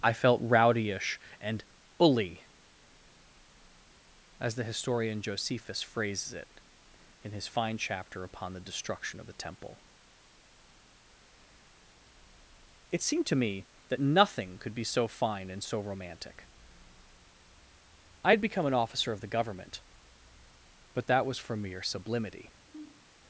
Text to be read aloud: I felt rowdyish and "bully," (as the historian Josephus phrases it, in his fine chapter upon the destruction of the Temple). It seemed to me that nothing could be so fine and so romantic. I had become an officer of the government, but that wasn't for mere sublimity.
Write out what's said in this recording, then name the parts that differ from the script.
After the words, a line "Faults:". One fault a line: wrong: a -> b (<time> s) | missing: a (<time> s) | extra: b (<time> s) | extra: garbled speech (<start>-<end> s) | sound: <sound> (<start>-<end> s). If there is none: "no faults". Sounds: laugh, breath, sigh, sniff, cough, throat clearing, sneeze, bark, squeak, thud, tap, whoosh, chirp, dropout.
I felt rowdyish and "bully," (as the historian Josephus phrases it, in his fine chapter upon the destruction of the Temple). It seemed to me that nothing could be so fine and so romantic. I had become an officer of the government, but that was for mere sublimity.
Faults:
wrong: wasn't -> was (21.2 s)
sound: sniff (22.7-23.1 s)